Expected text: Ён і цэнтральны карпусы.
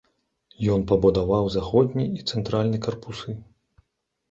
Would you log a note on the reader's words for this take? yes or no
yes